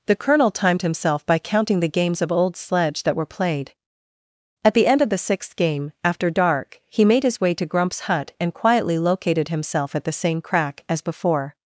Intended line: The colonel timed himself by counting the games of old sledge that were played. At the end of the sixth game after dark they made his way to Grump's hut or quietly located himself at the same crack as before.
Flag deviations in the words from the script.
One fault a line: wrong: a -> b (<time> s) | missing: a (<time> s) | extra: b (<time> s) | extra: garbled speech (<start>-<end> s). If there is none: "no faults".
wrong: they -> he (6.9 s)
wrong: or -> and (8.4 s)